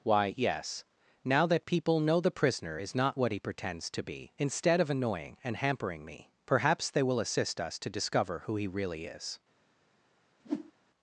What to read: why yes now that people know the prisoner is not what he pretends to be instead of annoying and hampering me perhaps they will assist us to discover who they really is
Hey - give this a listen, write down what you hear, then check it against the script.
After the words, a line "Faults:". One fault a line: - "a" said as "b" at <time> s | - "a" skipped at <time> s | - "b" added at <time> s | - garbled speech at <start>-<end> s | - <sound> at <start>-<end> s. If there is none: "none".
why yes now that people know the prisoner is not what he pretends to be instead of annoying and hampering me perhaps they will assist us to discover who he really is
Faults:
- "they" said as "he" at 8.6 s
- whoosh at 10.4-10.7 s